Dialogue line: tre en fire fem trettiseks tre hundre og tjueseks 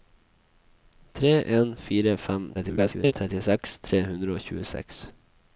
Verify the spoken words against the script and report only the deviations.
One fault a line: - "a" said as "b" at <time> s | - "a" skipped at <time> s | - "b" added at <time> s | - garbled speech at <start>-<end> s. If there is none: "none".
- garbled speech at 2.5-3.1 s